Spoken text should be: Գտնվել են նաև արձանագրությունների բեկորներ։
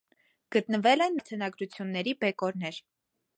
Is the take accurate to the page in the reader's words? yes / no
no